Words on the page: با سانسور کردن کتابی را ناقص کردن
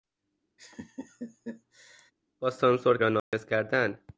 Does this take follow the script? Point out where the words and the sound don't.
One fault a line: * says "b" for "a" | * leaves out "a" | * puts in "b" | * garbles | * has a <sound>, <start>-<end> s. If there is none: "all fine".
* has a laugh, 0.6-2.1 s
* leaves out "کردن کتابی"
* has a dropout, 3.2-3.3 s